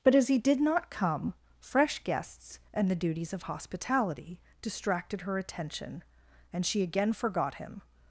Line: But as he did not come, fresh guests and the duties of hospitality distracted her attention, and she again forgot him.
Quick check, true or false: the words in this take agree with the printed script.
true